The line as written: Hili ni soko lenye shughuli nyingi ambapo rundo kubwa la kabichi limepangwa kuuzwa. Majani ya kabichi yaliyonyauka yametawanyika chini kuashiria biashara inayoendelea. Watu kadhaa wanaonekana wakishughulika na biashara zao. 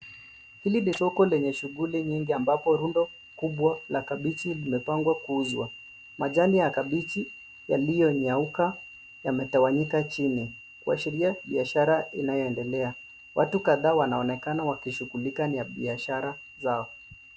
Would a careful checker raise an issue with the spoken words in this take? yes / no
no